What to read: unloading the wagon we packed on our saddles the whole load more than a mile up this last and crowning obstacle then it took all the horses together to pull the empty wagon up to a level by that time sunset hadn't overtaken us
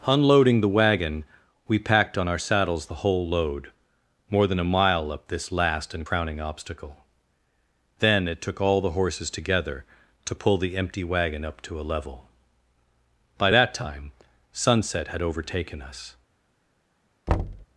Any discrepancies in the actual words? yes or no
yes